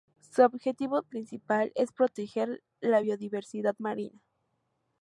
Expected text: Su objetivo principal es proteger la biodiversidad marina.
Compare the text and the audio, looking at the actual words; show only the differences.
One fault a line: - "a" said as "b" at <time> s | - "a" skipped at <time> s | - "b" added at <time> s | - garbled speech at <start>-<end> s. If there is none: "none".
none